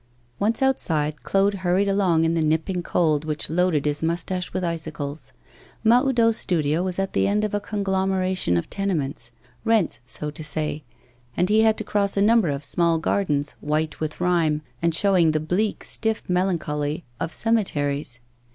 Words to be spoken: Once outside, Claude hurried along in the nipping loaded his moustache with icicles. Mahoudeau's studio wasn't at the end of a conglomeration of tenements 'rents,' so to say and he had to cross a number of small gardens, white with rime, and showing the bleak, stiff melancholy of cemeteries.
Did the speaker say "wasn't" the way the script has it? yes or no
no